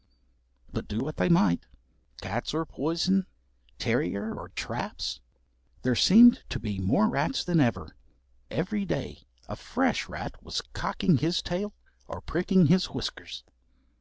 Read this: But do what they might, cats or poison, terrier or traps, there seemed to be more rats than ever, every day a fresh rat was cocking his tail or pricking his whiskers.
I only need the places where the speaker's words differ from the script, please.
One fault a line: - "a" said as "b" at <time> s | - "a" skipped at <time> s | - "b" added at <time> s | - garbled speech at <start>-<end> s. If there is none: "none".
none